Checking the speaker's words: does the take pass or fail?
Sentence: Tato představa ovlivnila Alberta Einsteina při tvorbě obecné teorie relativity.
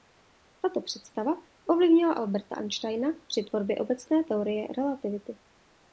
pass